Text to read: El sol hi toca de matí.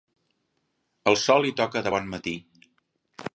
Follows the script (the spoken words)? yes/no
no